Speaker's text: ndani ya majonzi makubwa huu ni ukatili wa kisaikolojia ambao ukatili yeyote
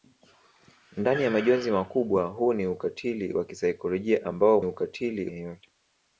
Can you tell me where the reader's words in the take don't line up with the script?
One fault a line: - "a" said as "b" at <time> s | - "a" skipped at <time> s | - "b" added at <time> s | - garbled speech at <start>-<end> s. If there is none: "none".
none